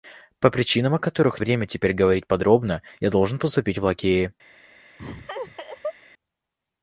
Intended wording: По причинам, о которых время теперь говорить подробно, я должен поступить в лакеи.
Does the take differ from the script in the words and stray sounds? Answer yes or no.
yes